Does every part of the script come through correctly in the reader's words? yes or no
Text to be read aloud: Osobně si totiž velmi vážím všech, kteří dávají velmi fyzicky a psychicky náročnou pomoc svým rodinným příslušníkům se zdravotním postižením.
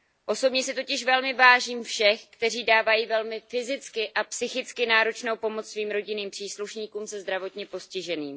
yes